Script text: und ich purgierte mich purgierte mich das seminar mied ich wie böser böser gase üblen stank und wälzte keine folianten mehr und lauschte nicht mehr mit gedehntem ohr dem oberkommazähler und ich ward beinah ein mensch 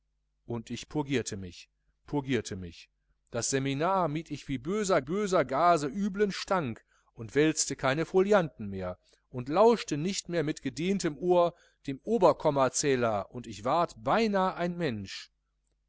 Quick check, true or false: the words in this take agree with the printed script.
true